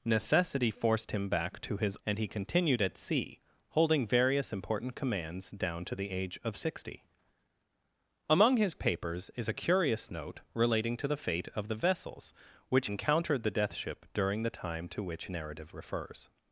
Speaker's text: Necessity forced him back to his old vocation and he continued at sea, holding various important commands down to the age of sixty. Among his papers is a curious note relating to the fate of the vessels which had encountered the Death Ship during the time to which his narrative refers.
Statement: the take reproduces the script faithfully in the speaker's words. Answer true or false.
false